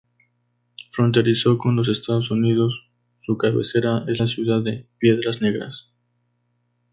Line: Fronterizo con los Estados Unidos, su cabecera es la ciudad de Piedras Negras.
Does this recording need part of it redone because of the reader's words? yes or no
no